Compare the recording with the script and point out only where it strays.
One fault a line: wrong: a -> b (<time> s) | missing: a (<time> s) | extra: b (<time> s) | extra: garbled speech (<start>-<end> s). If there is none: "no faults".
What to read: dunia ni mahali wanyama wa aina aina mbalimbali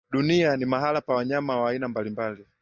extra: pa (1.0 s)
missing: aina (1.9 s)